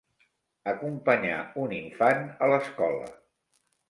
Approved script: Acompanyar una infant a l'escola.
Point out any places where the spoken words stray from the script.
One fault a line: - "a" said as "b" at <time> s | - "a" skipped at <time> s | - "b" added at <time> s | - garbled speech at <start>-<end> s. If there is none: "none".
- "una" said as "un" at 1.6 s